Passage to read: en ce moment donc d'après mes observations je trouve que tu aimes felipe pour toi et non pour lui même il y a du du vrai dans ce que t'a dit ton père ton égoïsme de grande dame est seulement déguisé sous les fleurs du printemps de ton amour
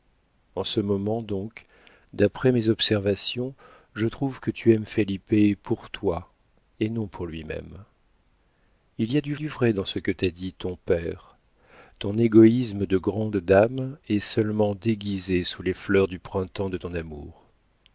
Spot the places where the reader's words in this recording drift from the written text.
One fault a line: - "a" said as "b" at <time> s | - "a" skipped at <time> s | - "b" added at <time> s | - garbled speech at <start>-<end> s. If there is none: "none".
none